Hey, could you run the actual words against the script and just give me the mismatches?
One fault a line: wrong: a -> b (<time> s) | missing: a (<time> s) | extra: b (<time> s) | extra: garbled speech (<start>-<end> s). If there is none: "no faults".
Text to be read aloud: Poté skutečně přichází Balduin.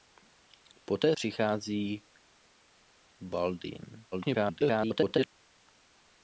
missing: skutečně (1.1 s)
extra: garbled speech (4.1-5.3 s)